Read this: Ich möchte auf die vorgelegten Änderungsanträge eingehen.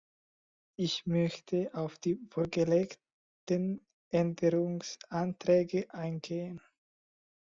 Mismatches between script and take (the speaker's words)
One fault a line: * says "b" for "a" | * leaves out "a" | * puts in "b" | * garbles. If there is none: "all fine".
all fine